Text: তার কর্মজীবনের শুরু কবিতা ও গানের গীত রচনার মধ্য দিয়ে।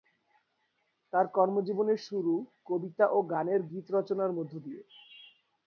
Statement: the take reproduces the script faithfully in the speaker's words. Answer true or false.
true